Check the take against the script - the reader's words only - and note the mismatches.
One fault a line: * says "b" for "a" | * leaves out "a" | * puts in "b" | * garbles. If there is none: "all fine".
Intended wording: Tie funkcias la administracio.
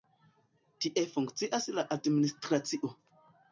all fine